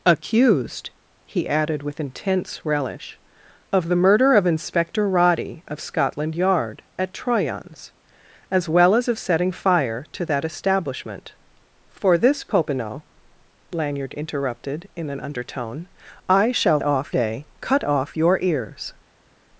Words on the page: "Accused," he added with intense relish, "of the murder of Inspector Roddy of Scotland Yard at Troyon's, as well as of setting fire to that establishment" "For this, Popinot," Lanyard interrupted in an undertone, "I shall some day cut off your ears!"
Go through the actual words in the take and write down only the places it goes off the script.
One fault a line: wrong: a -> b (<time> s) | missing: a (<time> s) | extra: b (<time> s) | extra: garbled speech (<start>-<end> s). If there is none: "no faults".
wrong: some -> off (16.8 s)